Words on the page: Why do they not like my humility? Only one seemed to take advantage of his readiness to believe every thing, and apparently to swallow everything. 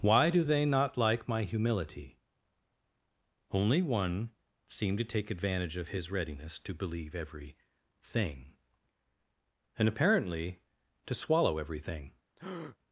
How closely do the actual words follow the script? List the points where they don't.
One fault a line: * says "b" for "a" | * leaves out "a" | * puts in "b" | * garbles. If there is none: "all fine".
all fine